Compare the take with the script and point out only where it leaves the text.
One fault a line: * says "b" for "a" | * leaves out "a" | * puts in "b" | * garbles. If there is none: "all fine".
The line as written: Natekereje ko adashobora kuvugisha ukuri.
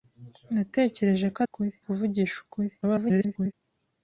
* says "ukuri" for "adashobora"
* garbles